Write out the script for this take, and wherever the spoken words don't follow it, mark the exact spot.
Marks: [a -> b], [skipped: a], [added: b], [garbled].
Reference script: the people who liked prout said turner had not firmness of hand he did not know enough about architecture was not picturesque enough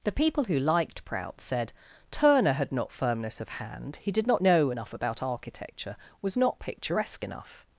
the people who liked prout said turner had not firmness of hand he did not know enough about architecture was not picturesque enough